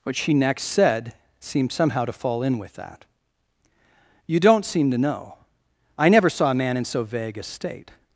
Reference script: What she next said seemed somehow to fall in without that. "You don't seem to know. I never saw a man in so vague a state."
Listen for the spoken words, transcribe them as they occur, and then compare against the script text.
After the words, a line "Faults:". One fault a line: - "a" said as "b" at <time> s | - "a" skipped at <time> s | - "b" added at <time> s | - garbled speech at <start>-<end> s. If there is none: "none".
What she next said seemed somehow to fall in with that. "You don't seem to know. I never saw a man in so vague a state."
Faults:
- "without" said as "with" at 2.6 s